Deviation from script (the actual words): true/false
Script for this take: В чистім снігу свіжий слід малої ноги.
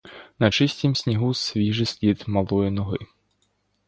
true